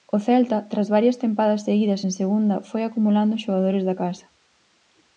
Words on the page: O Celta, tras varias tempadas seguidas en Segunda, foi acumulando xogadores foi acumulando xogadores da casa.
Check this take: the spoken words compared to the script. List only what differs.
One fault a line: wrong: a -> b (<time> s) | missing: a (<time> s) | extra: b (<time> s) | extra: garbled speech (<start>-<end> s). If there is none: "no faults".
missing: foi acumulando xogadores (3.8 s)